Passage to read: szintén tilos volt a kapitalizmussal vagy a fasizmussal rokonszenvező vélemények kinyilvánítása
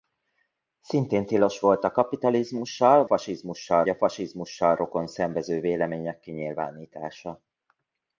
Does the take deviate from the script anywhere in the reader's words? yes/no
yes